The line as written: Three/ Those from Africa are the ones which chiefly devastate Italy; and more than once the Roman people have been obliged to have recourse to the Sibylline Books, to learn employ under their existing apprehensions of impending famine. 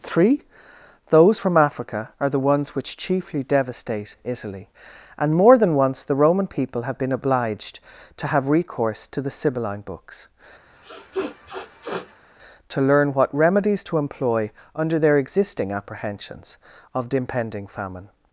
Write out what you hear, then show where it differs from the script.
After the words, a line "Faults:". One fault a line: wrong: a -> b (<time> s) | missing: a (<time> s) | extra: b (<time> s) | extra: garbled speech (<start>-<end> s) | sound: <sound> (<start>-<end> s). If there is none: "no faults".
Three/ Those from Africa are the ones which chiefly devastate Italy; and more than once the Roman people have been obliged to have recourse to the Sibylline Books, to learn what remedies to employ under their existing apprehensions of impending famine.
Faults:
sound: sniff (10.7-12.2 s)
extra: what remedies to (13.1 s)